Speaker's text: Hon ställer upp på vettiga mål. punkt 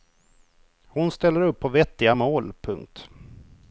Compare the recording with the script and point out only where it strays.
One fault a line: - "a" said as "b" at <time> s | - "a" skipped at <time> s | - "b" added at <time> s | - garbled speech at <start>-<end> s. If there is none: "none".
none